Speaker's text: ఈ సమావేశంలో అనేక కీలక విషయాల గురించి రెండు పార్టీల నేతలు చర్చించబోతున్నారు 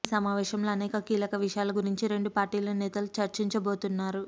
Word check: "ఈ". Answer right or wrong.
right